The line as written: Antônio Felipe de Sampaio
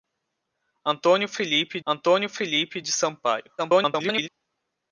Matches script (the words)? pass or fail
fail